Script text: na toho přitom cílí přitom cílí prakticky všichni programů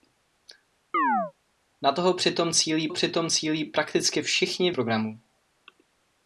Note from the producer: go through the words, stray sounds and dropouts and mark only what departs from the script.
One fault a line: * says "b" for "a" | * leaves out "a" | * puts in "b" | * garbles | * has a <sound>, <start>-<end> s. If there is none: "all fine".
* has a chirp, 0.9-1.3 s